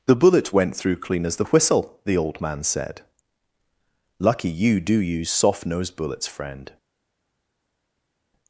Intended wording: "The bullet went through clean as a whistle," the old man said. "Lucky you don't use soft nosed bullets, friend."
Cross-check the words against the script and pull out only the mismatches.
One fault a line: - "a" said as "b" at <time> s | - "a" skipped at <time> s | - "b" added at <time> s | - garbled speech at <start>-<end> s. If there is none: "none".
- "a" said as "the" at 1.4 s
- "don't" said as "do" at 4.8 s